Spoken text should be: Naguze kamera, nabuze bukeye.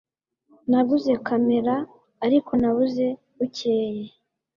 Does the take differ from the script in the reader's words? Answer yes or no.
yes